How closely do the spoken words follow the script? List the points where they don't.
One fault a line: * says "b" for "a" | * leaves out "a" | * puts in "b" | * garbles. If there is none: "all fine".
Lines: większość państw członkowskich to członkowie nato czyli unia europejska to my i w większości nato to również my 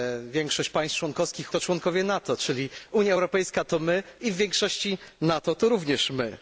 all fine